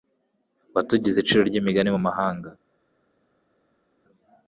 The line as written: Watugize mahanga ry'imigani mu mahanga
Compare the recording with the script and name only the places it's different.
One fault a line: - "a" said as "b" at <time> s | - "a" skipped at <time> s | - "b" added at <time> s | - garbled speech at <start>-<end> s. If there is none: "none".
- "mahanga" said as "iciro" at 1.2 s